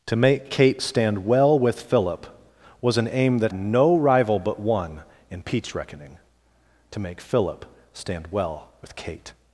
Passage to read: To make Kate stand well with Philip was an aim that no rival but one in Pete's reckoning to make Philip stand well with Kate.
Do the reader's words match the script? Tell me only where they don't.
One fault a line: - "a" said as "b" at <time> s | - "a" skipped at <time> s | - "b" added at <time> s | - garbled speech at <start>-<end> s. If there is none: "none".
none